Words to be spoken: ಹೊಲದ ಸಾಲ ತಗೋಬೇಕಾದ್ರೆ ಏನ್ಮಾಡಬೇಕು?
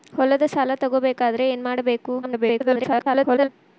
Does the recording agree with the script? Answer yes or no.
no